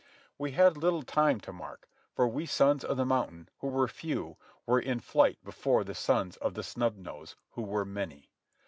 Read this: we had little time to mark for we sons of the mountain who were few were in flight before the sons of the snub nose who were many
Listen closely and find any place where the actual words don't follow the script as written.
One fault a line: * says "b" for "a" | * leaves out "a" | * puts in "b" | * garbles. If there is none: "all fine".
all fine